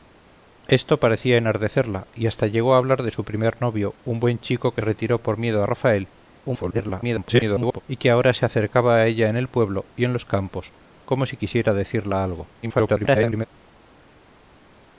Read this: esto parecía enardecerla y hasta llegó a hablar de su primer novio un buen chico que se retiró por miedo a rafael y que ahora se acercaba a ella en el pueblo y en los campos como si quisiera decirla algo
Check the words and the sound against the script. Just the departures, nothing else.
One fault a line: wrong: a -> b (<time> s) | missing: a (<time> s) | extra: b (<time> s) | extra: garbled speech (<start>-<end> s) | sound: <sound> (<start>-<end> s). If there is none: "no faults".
missing: se (4.8 s)
extra: garbled speech (6.4-7.8 s)
extra: garbled speech (12.6-13.5 s)